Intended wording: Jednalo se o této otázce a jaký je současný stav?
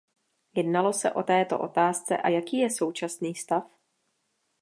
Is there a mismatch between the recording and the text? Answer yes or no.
no